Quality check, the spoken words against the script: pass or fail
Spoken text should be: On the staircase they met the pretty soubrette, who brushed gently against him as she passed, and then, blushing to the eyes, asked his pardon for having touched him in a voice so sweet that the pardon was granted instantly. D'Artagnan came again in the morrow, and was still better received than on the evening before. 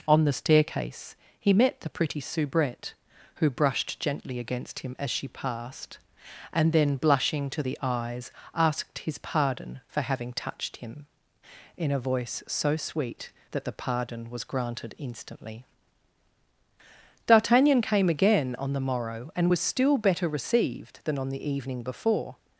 fail